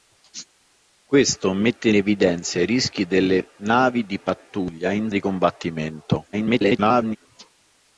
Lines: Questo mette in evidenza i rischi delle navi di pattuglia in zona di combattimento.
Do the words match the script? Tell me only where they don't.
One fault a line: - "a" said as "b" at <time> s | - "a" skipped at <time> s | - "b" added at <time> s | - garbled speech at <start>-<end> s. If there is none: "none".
- "in" skipped at 1.9 s
- "zona" skipped at 5.1 s
- garbled speech at 6.3-7.2 s